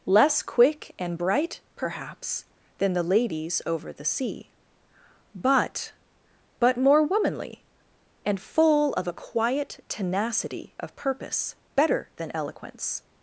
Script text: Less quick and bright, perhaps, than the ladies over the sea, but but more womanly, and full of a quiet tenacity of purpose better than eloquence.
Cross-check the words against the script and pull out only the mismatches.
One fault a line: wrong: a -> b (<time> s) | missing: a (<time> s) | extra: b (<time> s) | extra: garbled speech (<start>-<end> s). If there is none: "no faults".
no faults